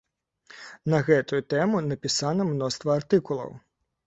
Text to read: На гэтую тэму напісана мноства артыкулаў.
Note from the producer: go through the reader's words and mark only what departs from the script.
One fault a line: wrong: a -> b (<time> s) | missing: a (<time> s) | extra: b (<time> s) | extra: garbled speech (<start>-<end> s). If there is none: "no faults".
no faults